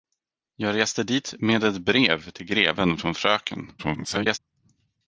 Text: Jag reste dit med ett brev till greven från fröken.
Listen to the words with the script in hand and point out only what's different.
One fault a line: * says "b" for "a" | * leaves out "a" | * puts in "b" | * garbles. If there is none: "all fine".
* garbles